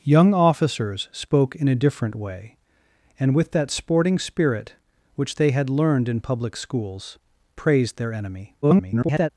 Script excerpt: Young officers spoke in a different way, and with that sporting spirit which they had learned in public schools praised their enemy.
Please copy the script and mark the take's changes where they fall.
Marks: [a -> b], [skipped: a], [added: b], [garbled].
Young officers spoke in a different way, and with that sporting spirit which they had learned in public schools praised their enemy. [garbled]